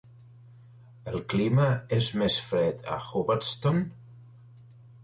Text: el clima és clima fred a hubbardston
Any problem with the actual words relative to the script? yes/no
yes